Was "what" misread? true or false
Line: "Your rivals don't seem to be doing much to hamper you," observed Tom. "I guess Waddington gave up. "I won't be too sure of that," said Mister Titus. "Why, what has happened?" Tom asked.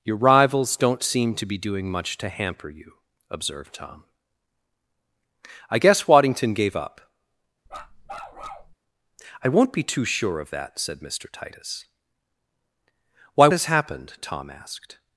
true